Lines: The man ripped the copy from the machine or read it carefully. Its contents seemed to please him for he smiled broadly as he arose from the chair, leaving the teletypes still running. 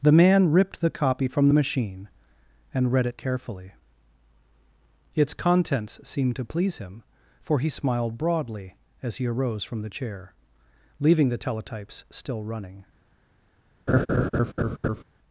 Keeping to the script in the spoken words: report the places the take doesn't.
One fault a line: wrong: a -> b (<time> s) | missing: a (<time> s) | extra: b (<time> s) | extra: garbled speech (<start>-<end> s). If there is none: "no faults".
wrong: or -> and (2.7 s)